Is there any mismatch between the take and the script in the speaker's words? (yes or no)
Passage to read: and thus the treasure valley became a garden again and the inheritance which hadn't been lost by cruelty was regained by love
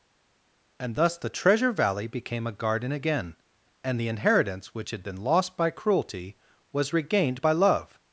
yes